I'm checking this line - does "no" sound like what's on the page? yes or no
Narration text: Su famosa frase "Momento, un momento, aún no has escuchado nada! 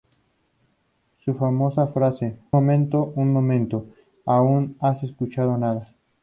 yes